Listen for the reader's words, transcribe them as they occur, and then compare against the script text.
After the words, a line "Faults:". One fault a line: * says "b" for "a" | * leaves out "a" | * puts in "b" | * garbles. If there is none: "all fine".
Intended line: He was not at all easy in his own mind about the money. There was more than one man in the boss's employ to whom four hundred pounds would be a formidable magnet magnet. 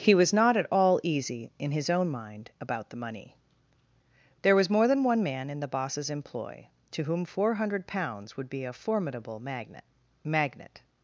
He was not at all easy in his own mind about the money. There was more than one man in the boss's employ to whom four hundred pounds would be a formidable magnet magnet.
Faults:
all fine